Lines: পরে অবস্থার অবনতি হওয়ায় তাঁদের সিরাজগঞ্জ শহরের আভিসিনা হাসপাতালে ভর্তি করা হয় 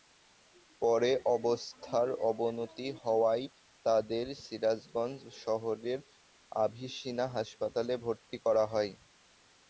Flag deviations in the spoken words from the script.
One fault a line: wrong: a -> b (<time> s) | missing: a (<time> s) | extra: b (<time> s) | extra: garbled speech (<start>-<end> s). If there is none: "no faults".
no faults